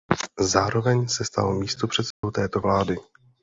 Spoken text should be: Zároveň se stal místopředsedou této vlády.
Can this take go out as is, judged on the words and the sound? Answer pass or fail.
fail